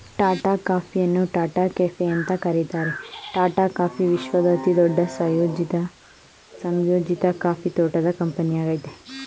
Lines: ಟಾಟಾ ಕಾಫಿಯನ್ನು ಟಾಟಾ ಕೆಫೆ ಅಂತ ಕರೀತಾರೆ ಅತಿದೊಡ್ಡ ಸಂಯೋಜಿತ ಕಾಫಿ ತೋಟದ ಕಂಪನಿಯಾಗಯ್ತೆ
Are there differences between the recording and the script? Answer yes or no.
yes